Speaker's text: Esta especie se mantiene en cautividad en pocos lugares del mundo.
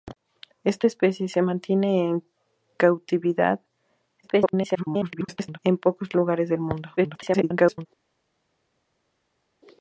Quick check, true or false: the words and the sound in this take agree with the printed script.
false